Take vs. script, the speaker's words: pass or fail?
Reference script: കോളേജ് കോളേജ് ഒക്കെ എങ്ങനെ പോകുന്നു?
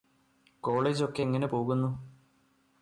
fail